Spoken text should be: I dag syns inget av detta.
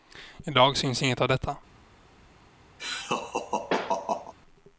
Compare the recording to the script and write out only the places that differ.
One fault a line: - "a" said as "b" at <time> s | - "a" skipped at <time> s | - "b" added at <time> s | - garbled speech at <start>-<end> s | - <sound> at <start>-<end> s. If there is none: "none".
- laugh at 2.8-4.3 s